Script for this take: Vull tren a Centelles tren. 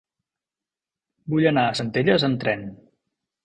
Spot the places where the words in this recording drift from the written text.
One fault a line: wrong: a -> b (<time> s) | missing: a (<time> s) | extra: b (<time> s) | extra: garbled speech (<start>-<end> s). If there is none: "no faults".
wrong: tren -> anar (1.5 s)
extra: amb (2.3 s)